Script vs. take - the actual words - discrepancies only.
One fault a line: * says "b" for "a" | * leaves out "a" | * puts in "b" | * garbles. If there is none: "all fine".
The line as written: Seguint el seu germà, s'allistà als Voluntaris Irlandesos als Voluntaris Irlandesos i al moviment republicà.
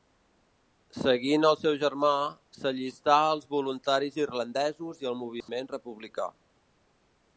* leaves out "als Voluntaris Irlandesos"